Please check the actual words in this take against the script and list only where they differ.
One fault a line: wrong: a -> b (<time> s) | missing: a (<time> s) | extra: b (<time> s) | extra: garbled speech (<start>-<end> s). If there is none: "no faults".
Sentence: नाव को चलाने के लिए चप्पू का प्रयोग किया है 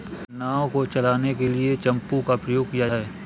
no faults